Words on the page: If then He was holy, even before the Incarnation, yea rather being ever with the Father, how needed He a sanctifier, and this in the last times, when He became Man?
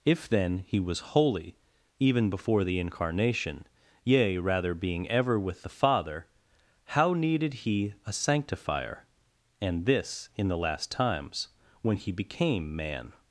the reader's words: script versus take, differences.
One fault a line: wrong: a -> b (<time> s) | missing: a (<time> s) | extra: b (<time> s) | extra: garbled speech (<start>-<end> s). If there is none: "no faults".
no faults